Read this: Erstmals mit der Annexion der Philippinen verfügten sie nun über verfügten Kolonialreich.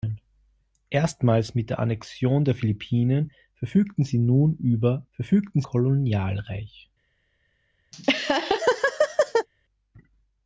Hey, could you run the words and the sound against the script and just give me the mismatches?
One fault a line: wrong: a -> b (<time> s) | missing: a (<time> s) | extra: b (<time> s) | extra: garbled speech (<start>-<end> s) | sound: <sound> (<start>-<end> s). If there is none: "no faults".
sound: laugh (7.9-9.5 s)